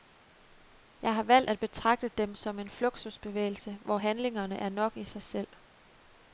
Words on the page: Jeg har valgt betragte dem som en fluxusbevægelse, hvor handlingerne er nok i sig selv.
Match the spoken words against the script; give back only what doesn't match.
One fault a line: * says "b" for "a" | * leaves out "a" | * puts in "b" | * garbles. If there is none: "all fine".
* puts in "at"